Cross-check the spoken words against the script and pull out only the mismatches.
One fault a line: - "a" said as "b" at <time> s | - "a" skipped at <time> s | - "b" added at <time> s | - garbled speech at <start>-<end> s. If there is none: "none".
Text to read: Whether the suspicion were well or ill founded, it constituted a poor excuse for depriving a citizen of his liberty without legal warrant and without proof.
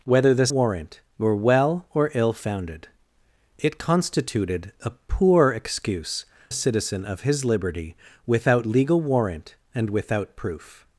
- "suspicion" said as "warrant" at 0.5 s
- "for depriving" skipped at 6.2 s